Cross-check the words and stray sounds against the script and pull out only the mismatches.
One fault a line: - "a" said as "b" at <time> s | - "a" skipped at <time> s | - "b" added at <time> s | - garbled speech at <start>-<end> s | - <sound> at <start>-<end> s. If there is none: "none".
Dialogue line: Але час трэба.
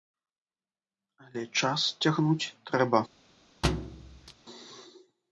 - "цягнуць" added at 2.0 s
- thud at 3.6-4.3 s